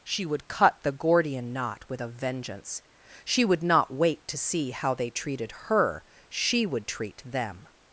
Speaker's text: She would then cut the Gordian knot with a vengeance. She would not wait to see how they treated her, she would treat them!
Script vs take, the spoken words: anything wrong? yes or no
yes